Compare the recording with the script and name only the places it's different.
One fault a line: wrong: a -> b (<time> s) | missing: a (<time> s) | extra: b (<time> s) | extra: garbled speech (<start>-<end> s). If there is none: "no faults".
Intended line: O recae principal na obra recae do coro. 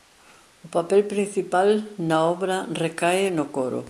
wrong: recae -> papel (0.7 s)
wrong: do -> no (3.3 s)